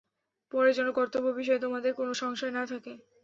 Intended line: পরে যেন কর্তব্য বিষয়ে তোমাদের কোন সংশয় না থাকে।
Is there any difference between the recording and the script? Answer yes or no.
no